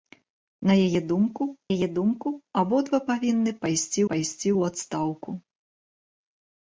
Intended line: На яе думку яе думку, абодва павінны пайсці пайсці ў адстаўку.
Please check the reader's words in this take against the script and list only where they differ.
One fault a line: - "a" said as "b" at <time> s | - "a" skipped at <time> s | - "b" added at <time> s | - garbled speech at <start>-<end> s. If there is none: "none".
none